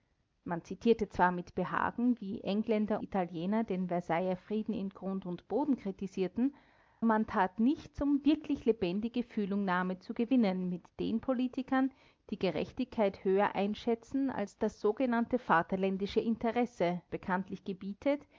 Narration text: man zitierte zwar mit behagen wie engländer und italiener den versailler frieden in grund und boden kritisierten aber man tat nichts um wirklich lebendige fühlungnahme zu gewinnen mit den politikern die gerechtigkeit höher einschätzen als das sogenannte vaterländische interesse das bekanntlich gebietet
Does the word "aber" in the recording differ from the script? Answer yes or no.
yes